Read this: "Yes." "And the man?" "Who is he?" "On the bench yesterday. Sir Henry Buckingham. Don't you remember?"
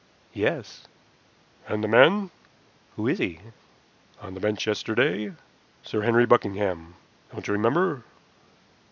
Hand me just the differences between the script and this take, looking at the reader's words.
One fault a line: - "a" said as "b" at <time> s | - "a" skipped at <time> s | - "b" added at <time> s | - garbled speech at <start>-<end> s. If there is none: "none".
none